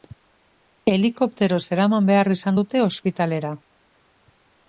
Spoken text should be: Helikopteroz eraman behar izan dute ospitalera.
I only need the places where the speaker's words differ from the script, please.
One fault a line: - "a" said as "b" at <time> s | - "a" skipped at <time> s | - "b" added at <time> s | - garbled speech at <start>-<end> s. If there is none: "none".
none